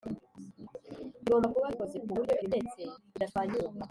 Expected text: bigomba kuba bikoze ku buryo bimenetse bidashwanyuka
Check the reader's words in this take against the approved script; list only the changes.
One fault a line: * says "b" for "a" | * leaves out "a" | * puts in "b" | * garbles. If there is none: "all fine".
all fine